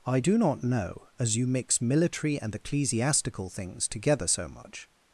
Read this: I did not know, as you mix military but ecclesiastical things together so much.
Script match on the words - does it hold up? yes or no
no